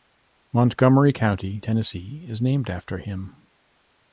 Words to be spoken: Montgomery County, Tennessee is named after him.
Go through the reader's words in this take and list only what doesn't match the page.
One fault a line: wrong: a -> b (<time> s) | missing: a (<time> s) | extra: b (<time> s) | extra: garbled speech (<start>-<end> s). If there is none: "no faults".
no faults